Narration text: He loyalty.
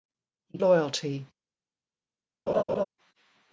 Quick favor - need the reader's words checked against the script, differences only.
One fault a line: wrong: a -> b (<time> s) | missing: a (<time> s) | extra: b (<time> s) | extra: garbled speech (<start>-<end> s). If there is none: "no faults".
no faults